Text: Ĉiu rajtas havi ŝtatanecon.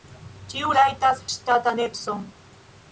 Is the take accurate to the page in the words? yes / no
no